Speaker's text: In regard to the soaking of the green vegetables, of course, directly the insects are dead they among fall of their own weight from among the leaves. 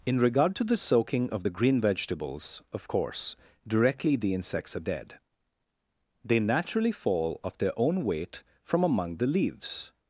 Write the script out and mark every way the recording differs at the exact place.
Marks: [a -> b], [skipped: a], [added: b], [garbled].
In regard to the soaking of the green vegetables, of course, directly the insects are dead they [among -> naturally] fall of their own weight from among the leaves.